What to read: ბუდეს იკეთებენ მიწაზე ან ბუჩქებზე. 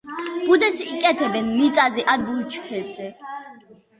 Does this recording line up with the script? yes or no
yes